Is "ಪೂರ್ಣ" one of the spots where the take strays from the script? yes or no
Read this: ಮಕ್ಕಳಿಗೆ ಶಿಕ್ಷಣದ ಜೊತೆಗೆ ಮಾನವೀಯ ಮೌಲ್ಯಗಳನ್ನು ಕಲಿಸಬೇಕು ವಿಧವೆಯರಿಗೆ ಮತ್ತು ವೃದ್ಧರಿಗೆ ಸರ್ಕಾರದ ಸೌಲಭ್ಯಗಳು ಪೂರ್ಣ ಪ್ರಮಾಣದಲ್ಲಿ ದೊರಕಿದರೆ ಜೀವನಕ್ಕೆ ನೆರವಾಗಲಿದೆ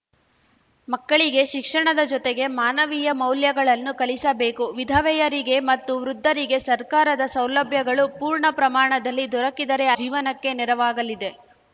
no